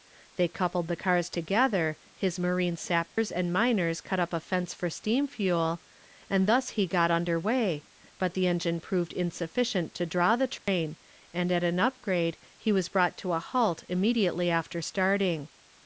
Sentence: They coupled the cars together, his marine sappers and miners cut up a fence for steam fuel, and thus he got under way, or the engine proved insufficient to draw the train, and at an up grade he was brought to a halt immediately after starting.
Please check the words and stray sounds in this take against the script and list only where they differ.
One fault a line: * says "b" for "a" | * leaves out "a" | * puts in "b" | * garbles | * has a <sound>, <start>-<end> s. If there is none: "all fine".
* has a dropout, 3.1-3.2 s
* says "but" for "or"
* has a dropout, 10.6-10.7 s